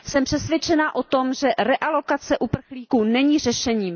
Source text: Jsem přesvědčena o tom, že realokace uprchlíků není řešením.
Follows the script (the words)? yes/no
yes